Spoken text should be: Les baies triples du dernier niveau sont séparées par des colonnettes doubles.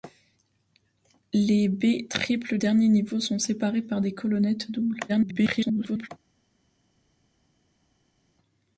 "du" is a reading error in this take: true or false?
true